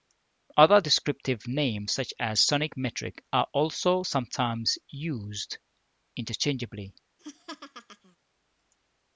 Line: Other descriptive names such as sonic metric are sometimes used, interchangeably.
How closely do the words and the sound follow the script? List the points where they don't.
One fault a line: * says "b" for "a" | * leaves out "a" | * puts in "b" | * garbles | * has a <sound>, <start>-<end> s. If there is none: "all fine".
* puts in "also"
* has a laugh, 7.2-8.2 s